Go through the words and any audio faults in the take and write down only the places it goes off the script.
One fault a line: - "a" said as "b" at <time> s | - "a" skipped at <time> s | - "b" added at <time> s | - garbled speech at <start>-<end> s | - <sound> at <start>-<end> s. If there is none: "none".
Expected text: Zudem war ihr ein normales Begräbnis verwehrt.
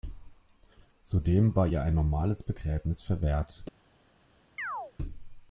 - chirp at 4.6-4.9 s